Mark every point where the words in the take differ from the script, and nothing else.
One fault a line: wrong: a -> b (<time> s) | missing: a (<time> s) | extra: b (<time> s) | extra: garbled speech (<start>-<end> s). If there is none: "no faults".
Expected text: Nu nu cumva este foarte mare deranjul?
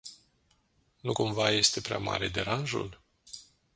missing: nu (1.1 s)
wrong: foarte -> prea (1.8 s)